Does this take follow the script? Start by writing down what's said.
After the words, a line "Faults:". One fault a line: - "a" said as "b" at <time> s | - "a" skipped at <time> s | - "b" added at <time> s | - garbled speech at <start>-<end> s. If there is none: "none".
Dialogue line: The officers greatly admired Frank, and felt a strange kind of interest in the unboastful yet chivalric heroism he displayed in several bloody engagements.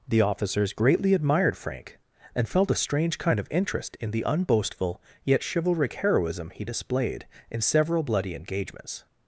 The officers greatly admired Frank, and felt a strange kind of interest in the unboastful yet chivalric heroism he displayed in several bloody engagements.
Faults:
none